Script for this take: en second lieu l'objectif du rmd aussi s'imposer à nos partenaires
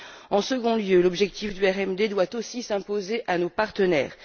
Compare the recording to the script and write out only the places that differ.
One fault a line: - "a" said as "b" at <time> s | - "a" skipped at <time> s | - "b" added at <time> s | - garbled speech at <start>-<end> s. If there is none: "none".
- "doit" added at 2.1 s